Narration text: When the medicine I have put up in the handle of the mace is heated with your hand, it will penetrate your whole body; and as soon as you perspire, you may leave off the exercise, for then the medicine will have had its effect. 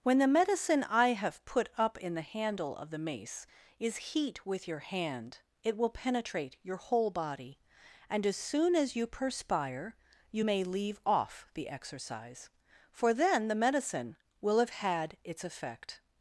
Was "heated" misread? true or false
true